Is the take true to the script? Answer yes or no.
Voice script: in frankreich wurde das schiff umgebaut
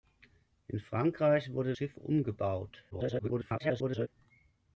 no